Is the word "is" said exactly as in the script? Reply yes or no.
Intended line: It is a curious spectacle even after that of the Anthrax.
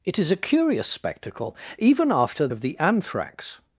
yes